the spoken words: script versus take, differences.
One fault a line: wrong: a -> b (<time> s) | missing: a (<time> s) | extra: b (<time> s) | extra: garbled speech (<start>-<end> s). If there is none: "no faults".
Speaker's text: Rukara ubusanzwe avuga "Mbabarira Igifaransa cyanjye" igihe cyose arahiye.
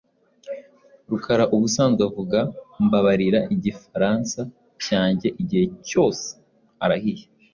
no faults